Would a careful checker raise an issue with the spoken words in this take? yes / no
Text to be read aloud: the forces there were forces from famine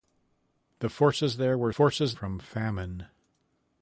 no